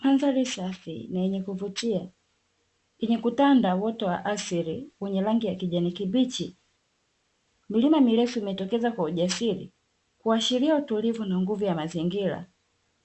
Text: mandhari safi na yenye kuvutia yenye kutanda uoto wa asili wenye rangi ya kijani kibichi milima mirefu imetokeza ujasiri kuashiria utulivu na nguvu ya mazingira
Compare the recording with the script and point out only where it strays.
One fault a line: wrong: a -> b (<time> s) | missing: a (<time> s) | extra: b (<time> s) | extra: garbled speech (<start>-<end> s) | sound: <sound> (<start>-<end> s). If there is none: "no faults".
extra: kwa (8.9 s)